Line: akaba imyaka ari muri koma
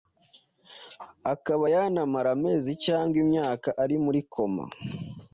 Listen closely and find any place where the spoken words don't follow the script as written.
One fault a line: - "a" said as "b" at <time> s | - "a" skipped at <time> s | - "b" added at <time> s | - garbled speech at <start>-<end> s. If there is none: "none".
- "yanamara amezi cyangwa" added at 1.7 s